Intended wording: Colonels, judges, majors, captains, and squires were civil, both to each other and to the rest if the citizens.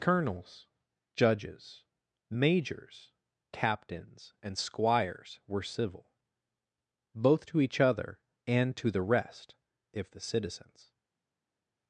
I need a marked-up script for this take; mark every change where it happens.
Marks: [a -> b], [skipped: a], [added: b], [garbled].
Colonels, judges, majors, captains, and squires were civil, both to each other and to the rest if the citizens.